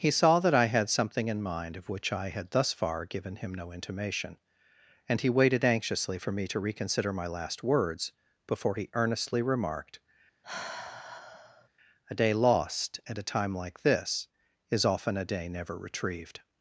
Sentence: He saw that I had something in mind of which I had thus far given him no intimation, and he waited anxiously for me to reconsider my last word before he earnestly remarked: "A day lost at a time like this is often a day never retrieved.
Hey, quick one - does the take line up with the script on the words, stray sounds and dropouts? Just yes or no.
no